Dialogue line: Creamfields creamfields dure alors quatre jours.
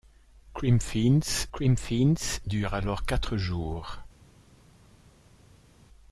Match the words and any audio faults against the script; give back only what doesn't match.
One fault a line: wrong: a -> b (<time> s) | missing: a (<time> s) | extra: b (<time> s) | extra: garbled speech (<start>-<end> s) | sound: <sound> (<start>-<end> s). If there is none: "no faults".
no faults